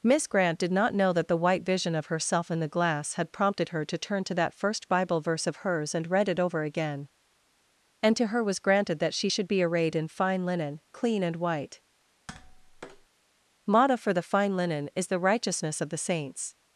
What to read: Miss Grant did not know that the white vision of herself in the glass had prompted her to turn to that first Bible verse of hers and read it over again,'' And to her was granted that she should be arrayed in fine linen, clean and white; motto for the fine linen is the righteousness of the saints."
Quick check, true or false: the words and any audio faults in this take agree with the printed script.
false